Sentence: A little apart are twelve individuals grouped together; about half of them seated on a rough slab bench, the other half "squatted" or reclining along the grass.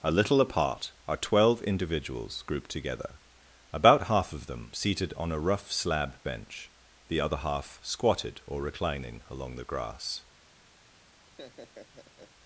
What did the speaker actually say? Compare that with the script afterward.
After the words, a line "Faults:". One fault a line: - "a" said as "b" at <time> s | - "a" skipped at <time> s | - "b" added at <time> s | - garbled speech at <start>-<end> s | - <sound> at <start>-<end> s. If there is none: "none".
A little apart are twelve individuals grouped together; about half of them seated on a rough slab bench, the other half "squatted" or reclining along the grass.
Faults:
- laugh at 11.3-12.3 s